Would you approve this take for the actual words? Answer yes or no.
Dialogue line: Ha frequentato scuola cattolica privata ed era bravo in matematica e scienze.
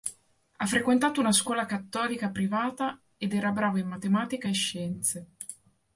no